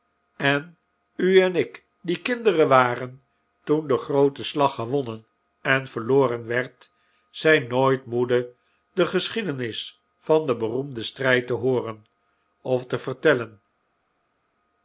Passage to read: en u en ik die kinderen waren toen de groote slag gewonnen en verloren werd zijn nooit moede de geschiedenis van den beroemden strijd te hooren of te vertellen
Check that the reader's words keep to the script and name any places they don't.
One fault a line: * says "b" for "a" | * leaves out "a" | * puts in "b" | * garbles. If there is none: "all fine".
all fine